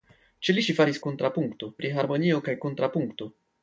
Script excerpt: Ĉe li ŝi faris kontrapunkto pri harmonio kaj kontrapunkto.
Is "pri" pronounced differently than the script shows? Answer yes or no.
no